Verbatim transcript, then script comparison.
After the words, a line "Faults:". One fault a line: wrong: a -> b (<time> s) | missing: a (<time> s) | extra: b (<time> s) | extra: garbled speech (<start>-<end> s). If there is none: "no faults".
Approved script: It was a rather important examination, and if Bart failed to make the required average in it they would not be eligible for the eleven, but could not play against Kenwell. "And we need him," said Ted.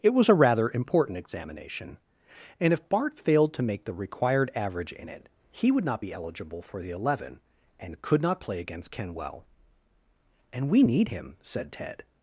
It was a rather important examination, and if Bart failed to make the required average in it he would not be eligible for the eleven, and could not play against Kenwell. "And we need him," said Ted.
Faults:
wrong: they -> he (5.5 s)
wrong: but -> and (7.8 s)